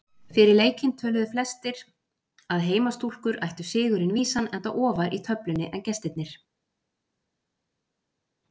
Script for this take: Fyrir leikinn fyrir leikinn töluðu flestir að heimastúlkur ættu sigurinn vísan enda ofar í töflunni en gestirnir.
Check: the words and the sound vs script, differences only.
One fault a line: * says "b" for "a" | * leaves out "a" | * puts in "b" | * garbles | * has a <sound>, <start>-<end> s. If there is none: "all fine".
* leaves out "fyrir leikinn"